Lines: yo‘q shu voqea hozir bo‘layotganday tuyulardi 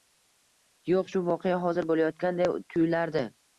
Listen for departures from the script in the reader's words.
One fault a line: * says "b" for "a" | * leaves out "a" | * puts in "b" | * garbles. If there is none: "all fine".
all fine